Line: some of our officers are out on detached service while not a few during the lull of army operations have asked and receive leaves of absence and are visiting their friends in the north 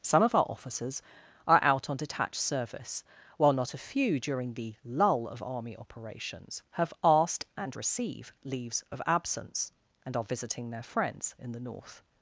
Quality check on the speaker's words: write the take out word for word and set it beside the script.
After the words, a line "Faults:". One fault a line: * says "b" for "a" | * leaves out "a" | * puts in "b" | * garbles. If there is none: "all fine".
some of our officers are out on detached service while not a few during the lull of army operations have asked and receive leaves of absence and are visiting their friends in the north
Faults:
all fine